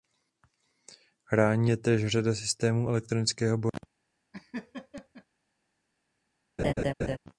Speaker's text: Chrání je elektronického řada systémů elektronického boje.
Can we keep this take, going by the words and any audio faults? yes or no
no